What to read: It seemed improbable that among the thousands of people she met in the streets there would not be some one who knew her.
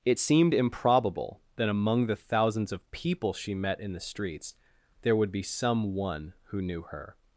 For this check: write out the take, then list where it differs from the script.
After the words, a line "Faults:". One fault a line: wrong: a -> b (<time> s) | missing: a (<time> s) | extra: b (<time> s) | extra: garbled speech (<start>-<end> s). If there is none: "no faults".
It seemed improbable that among the thousands of people she met in the streets there would be some one who knew her.
Faults:
missing: not (5.3 s)